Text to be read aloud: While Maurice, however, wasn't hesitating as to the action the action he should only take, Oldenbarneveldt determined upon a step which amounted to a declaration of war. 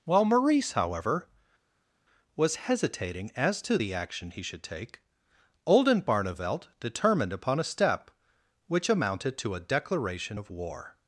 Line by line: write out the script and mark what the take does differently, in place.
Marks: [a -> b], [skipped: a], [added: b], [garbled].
While Maurice, however, [wasn't -> was] hesitating as to the action [skipped: the action] he should [skipped: only] take, Oldenbarneveldt determined upon a step which amounted to a declaration of war.